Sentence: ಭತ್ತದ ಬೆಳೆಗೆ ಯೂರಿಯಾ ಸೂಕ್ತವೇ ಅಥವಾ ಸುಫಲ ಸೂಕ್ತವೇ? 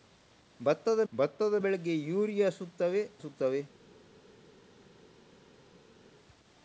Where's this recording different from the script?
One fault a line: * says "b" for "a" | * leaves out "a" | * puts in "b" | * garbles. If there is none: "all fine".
* puts in "ಭತ್ತದ"
* leaves out "ಅಥವಾ ಸುಫಲ"